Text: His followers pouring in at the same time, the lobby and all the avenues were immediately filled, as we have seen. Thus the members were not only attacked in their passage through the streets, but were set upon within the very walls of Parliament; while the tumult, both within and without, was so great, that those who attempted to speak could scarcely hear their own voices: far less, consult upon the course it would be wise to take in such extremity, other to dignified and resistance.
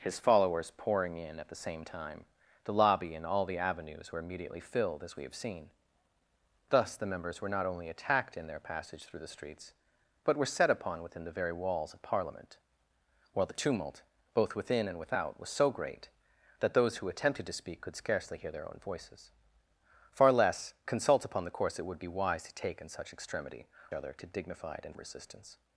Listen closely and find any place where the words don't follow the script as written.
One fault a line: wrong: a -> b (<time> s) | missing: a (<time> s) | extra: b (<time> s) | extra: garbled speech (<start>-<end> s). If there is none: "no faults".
no faults